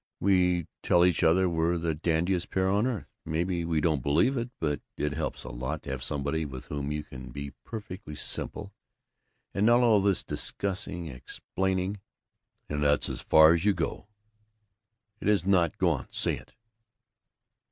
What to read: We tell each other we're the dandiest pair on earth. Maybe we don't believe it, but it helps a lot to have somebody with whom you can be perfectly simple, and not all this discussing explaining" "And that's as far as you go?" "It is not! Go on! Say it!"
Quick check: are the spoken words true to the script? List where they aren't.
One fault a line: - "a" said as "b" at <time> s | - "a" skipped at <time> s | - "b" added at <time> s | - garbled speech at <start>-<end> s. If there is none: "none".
none